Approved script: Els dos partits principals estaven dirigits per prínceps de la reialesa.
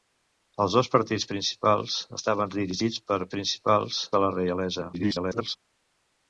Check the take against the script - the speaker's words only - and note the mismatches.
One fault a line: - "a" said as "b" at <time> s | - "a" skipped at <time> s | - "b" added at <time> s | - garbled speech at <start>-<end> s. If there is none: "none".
- "prínceps" said as "principals" at 3.3 s
- garbled speech at 4.9-5.6 s